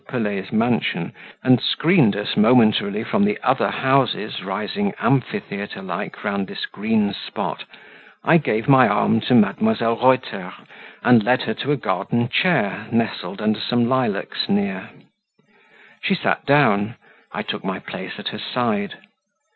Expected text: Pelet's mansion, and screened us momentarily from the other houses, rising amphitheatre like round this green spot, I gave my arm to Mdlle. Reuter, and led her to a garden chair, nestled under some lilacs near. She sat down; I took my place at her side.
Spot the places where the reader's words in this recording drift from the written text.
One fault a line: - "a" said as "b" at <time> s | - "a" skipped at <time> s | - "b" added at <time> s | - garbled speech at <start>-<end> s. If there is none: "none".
none